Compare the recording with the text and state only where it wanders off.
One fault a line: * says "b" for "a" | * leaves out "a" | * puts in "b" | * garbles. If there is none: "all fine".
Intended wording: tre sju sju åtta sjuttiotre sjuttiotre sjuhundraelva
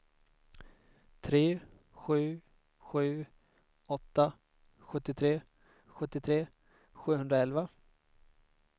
all fine